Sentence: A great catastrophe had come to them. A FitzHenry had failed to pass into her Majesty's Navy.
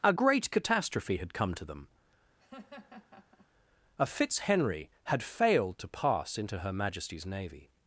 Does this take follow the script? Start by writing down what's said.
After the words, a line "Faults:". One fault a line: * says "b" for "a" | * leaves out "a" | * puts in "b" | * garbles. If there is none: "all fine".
A great catastrophe had come to them. A FitzHenry had failed to pass into her Majesty's Navy.
Faults:
all fine